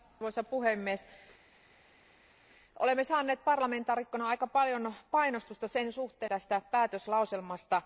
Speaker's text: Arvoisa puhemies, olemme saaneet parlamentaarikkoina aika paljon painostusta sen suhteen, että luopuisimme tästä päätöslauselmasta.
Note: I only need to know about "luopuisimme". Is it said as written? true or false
false